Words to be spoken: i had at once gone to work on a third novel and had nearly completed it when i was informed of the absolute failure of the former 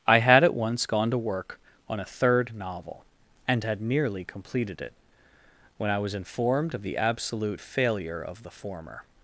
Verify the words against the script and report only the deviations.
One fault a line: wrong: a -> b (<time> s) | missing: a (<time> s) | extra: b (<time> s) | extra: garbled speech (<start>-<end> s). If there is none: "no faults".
no faults